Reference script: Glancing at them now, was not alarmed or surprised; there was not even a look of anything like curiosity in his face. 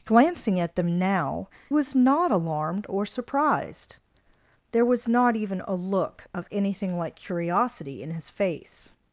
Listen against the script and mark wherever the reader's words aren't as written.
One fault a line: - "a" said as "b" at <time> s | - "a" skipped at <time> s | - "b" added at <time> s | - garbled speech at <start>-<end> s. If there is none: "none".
none